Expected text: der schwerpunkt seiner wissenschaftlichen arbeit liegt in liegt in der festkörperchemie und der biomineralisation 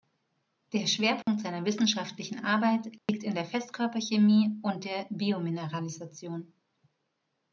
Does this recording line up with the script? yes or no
no